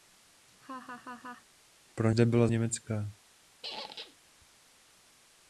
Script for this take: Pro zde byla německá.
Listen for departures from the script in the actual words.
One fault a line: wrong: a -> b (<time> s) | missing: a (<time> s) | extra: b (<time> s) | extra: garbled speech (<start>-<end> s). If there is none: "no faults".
no faults